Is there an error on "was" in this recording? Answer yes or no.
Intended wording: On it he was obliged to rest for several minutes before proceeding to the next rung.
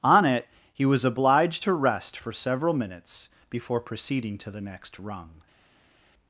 no